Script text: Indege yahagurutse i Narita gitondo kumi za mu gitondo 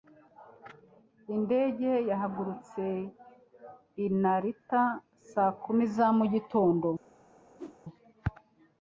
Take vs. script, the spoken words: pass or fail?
fail